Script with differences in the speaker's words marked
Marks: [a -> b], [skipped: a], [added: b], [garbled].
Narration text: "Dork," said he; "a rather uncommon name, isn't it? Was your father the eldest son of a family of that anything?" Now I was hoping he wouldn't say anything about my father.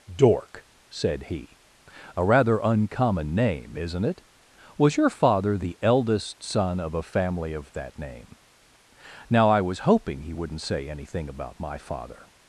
"Dork," said he; "a rather uncommon name, isn't it? Was your father the eldest son of a family of that [anything?" -> name] Now I was hoping he wouldn't say anything about my father.